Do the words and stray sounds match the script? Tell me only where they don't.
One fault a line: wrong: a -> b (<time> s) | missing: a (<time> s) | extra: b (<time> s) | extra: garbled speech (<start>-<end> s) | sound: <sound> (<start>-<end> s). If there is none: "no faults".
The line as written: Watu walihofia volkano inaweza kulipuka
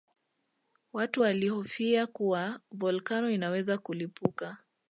extra: kuwa (2.1 s)